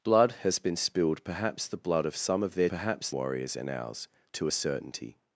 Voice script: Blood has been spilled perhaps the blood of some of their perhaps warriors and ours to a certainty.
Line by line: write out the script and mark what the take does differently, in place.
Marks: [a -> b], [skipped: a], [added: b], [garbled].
Blood has been spilled perhaps the blood of some of their perhaps warriors and ours to a certainty.